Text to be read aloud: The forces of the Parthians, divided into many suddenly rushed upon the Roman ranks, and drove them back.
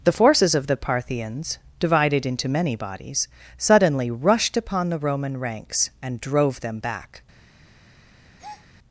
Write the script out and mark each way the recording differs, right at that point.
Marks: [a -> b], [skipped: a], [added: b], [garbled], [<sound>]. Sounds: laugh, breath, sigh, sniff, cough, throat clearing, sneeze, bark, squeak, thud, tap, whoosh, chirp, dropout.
The forces of the Parthians, divided into many [added: bodies] suddenly rushed upon the Roman ranks, and drove them back. [breath]